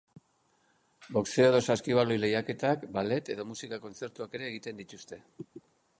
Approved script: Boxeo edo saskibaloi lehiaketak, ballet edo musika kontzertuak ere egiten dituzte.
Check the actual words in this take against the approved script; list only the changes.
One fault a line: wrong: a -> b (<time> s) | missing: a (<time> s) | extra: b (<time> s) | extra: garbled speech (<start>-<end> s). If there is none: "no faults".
no faults